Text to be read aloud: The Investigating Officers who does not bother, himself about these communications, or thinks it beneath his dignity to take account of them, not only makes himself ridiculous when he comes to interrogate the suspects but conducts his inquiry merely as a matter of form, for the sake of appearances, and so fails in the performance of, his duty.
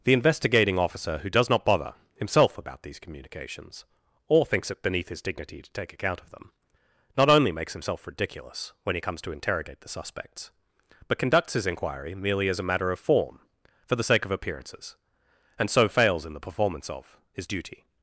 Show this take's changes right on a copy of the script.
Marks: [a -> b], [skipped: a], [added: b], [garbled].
The Investigating [Officers -> Officer] who does not bother, himself about these communications, or thinks it beneath his dignity to take account of them, not only makes himself ridiculous when he comes to interrogate the suspects but conducts his inquiry merely as a matter of form, for the sake of appearances, and so fails in the performance of, his duty.